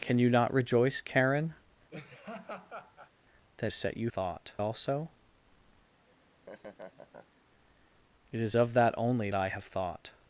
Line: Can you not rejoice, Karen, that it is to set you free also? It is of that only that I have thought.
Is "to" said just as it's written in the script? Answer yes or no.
no